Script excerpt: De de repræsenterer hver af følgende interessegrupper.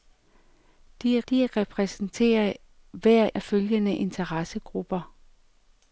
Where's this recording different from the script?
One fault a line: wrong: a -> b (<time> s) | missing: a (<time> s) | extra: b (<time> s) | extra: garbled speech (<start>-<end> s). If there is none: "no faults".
no faults